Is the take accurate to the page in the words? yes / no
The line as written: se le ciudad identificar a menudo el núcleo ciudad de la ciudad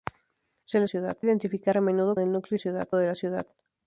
yes